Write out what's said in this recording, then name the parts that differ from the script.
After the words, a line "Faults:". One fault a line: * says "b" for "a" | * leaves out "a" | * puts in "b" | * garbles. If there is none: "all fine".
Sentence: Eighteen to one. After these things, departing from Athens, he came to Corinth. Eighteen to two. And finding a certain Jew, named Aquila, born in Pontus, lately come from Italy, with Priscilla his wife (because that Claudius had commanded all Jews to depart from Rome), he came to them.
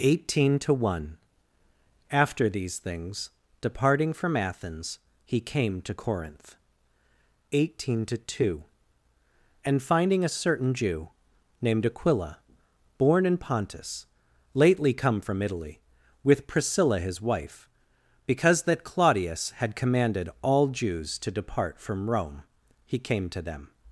Eighteen to one. After these things, departing from Athens, he came to Corinth. Eighteen to two. And finding a certain Jew, named Aquila, born in Pontus, lately come from Italy, with Priscilla his wife (because that Claudius had commanded all Jews to depart from Rome), he came to them.
Faults:
all fine